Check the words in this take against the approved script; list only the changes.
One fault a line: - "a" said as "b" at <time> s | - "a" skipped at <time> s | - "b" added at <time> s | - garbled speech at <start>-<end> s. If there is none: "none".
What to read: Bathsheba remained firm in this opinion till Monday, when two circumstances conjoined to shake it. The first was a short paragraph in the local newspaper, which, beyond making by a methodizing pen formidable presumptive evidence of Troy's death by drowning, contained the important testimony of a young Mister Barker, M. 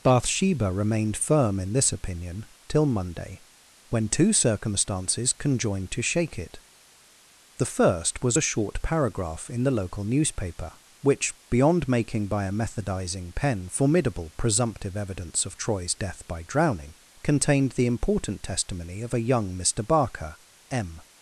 none